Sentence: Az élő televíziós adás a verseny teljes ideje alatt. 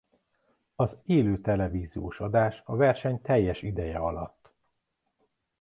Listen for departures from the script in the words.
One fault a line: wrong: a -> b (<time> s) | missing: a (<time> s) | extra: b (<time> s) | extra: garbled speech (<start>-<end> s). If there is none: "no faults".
no faults